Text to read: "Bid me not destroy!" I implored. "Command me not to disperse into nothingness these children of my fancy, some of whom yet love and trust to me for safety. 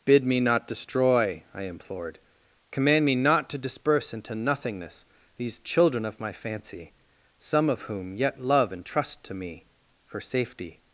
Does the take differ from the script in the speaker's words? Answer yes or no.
no